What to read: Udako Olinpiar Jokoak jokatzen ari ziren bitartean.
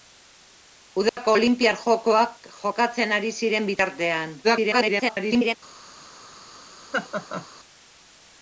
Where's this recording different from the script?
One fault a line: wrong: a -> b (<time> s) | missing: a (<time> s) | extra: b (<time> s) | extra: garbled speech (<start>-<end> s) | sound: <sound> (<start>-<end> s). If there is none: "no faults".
sound: dropout (1.1-1.2 s)
extra: garbled speech (4.4-5.5 s)
sound: laugh (6.9-7.5 s)